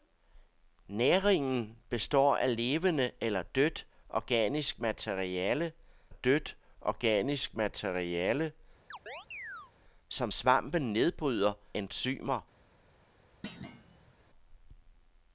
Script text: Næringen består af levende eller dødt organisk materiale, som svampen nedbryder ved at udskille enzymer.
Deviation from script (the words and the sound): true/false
true